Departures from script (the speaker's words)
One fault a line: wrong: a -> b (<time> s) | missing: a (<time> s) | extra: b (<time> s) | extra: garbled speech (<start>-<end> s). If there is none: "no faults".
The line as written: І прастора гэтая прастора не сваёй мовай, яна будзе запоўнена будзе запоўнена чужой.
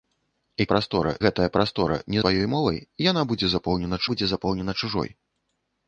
no faults